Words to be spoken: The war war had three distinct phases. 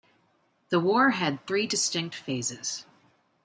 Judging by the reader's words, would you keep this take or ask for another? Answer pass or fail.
fail